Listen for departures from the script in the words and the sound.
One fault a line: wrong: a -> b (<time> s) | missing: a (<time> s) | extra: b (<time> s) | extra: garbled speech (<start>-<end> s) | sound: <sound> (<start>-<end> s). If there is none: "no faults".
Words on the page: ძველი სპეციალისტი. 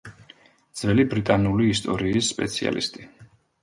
extra: ბრიტანული ისტორიის (1.1 s)